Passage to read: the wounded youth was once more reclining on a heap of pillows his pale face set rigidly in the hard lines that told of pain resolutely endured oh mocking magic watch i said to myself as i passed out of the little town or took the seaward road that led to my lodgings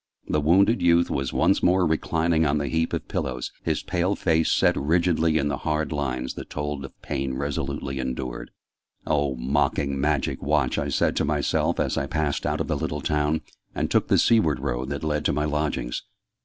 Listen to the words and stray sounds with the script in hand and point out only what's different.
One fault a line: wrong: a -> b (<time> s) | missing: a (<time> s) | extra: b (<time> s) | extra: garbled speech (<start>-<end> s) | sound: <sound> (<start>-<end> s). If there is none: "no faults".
wrong: a -> the (2.6 s)
wrong: or -> and (13.7 s)